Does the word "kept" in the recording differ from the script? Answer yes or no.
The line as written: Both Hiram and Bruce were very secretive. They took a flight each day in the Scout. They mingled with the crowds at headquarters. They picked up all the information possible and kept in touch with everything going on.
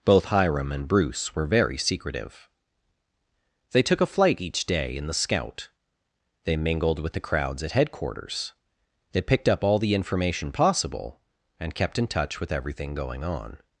no